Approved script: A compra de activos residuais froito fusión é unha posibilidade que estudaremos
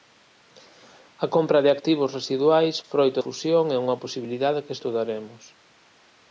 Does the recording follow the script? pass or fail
pass